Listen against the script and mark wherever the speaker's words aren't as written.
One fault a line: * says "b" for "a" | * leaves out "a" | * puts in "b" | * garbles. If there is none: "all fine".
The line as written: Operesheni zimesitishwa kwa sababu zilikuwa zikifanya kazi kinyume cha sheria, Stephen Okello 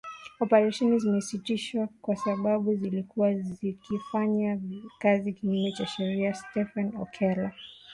all fine